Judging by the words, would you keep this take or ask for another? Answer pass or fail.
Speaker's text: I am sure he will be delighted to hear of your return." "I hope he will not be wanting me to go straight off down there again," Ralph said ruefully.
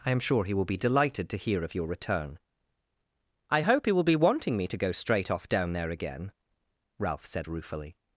fail